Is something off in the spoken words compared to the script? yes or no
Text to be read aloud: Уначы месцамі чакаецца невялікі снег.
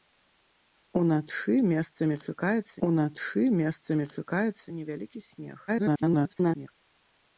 yes